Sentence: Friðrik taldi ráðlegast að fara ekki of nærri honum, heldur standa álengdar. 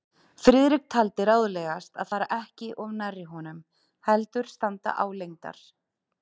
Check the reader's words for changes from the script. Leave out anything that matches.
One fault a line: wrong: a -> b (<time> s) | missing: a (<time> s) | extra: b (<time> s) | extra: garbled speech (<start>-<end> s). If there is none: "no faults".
no faults